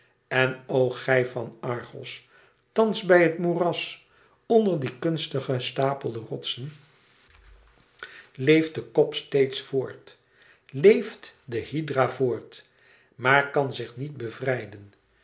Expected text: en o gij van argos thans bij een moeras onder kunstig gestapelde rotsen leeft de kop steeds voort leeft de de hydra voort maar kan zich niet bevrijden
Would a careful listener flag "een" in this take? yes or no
yes